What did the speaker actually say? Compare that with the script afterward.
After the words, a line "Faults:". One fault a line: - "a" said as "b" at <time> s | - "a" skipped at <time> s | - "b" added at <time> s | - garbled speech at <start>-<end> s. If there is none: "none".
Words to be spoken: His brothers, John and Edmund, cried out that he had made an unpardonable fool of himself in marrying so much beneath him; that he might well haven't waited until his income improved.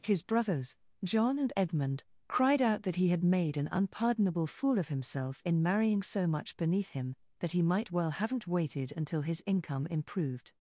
His brothers, John and Edmund, cried out that he had made an unpardonable fool of himself in marrying so much beneath him; that he might well haven't waited until his income improved.
Faults:
none